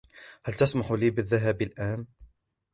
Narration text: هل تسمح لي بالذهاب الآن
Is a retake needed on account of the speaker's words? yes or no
no